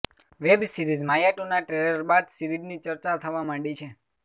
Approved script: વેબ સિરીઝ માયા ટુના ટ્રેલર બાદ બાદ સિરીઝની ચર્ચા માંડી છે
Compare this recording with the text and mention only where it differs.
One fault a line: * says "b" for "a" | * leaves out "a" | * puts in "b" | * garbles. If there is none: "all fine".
* leaves out "બાદ"
* puts in "થવા"